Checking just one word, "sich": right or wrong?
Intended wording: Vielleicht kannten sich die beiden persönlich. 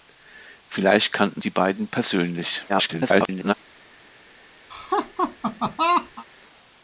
wrong